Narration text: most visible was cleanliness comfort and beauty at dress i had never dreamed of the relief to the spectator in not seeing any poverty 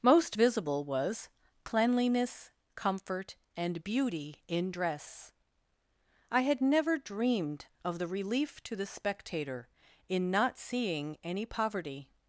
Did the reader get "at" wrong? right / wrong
wrong